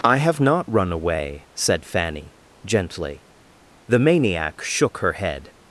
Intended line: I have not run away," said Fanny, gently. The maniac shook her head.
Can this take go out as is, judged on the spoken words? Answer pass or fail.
pass